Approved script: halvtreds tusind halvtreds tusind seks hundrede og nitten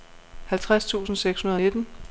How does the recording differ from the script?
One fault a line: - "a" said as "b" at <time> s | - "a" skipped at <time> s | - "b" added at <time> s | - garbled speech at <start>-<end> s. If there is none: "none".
- "halvtreds tusind" skipped at 1.1 s